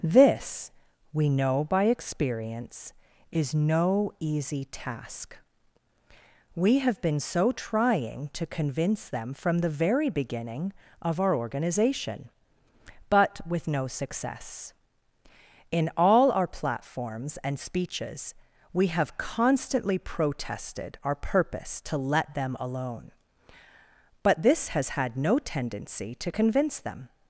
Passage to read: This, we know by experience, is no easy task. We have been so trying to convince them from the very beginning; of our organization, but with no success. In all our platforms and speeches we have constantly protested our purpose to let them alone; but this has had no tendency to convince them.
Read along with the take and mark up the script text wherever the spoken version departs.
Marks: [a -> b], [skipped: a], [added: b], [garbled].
This, we know by experience, is no easy task. We have been so trying to convince them from the very beginning; of our organization, but with no success. In all our platforms and speeches we have constantly protested our purpose to let them alone; but this has had no tendency to convince them.